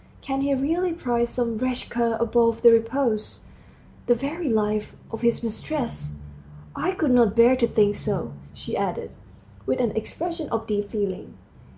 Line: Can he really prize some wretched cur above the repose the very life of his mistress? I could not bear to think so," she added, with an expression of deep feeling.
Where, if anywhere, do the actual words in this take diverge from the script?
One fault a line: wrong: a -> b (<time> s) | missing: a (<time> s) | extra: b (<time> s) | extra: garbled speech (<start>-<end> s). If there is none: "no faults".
no faults